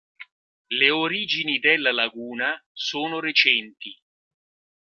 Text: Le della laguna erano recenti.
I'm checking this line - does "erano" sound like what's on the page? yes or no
no